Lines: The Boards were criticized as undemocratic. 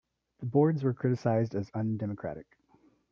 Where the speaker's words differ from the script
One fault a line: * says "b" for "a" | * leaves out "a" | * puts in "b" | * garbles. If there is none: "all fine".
all fine